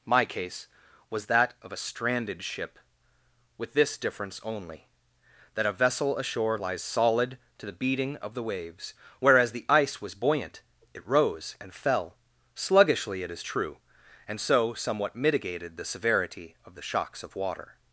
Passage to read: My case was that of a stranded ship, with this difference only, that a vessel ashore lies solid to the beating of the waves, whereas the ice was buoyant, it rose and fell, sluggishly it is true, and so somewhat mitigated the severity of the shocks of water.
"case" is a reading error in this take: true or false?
false